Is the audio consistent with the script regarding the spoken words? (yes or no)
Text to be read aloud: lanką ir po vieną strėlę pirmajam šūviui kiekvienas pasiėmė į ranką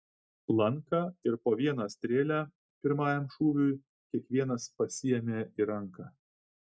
yes